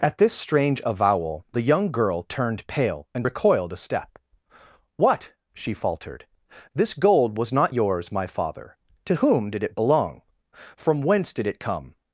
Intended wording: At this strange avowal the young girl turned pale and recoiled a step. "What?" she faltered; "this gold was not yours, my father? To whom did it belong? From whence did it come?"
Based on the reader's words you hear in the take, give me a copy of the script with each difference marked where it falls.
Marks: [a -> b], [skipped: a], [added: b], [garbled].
At this strange avowal the young girl turned pale and recoiled a step. "What?" she faltered; "this gold was not yours, my father? To whom did it belong? From whence did it come?"